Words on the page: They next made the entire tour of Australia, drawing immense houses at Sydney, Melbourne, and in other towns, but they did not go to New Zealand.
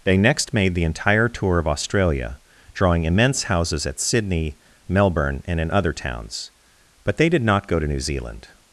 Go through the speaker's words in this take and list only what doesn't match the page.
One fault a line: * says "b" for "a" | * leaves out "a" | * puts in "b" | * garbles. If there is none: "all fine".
all fine